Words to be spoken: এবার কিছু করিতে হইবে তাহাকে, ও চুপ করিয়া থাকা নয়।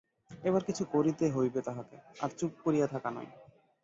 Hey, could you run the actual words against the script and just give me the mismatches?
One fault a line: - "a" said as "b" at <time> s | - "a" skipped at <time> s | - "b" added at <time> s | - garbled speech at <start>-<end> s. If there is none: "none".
- "ও" said as "আর" at 2.2 s